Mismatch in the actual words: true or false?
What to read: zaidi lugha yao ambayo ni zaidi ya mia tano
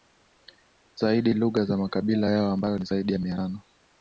true